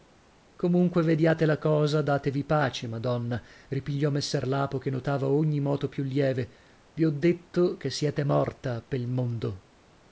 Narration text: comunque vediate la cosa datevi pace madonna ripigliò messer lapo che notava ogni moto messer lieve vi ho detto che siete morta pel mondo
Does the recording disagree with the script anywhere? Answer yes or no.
yes